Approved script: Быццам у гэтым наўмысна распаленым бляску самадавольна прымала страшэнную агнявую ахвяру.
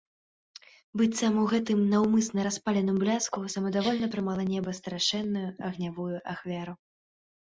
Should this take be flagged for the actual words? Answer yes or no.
yes